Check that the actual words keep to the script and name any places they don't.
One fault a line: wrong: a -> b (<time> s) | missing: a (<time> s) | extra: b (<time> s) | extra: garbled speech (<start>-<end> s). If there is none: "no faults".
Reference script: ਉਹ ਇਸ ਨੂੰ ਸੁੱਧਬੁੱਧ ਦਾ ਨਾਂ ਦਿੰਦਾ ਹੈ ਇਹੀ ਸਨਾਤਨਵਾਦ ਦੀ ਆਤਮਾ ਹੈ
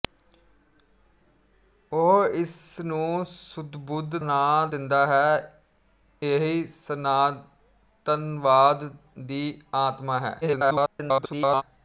missing: ਦਾ (4.2 s)
extra: garbled speech (10.4-11.6 s)